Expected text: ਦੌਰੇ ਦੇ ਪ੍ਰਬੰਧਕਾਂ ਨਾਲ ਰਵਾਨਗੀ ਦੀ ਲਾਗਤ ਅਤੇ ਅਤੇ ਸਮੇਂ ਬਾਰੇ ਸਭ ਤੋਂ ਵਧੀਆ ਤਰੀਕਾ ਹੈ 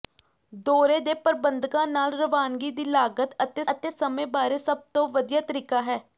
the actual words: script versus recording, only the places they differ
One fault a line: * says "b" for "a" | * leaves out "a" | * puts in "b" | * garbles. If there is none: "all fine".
all fine